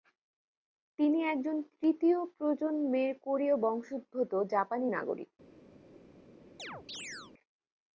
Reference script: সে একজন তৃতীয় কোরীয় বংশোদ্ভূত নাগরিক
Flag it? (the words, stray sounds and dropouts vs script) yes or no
yes